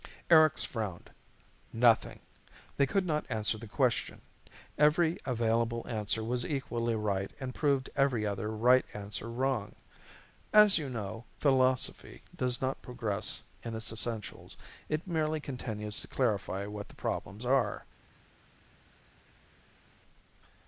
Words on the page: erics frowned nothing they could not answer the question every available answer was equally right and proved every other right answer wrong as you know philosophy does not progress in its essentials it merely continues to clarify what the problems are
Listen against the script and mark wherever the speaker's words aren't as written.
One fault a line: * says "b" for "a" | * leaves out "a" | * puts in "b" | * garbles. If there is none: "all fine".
all fine